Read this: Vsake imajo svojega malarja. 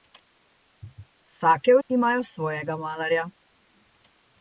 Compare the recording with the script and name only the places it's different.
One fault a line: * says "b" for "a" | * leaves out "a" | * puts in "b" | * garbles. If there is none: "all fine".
all fine